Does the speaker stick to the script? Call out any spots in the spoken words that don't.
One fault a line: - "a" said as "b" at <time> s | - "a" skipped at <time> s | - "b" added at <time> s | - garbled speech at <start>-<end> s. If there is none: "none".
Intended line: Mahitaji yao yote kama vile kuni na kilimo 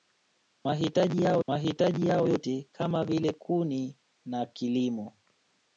- "mahitaji yao" added at 1.5 s